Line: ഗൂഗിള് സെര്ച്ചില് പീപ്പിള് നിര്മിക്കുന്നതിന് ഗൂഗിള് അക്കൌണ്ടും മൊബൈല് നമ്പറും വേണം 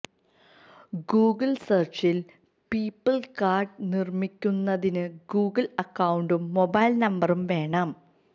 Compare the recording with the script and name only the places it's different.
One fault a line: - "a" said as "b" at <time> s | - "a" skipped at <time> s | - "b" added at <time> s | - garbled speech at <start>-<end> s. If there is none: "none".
- "കാര്ഡ്" added at 3.4 s